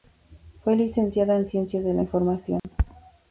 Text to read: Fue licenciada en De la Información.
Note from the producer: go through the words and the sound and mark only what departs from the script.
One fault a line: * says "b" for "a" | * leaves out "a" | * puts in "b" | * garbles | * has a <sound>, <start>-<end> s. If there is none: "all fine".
* puts in "Ciencias"
* has a dropout, 2.6-2.6 s